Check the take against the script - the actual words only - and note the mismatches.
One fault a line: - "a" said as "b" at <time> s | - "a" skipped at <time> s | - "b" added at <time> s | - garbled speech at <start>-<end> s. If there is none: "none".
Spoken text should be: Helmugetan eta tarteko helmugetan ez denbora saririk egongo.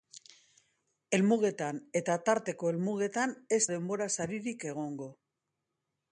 none